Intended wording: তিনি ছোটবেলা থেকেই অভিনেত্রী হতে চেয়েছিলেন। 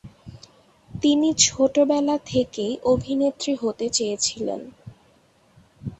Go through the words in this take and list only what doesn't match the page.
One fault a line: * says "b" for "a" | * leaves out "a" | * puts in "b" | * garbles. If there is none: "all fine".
all fine